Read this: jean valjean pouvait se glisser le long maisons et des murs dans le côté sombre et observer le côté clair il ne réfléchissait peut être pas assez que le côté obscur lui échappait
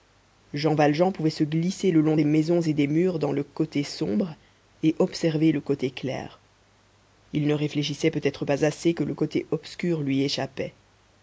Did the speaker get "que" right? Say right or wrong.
right